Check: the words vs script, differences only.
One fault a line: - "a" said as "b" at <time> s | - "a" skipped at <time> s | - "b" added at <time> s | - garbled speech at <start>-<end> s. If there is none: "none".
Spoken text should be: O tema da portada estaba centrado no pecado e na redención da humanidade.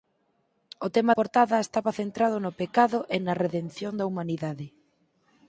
- "da" skipped at 1.1 s